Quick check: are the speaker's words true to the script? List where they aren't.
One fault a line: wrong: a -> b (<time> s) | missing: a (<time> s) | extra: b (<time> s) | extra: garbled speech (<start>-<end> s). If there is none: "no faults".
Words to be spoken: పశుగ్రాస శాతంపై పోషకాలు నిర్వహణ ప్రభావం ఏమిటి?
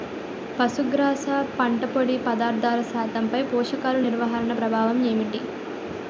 extra: పంట పొడి పదార్థాల (1.6 s)